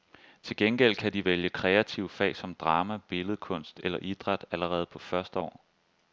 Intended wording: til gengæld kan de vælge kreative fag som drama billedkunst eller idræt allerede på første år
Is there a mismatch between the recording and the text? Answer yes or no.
no